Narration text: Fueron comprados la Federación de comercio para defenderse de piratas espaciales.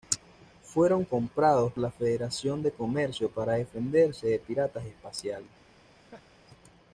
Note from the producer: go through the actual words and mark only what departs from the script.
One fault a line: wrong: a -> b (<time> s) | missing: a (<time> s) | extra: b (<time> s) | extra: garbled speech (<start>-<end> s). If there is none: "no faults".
no faults